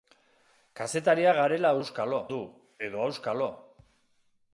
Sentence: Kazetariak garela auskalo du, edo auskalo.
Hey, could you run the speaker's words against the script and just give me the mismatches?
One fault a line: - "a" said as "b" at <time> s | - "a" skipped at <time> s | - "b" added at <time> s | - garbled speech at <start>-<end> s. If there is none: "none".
none